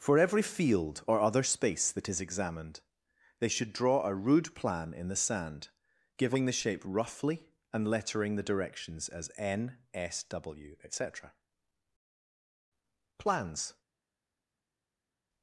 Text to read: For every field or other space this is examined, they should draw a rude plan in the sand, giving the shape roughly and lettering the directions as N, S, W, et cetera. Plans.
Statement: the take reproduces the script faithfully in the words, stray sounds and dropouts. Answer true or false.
false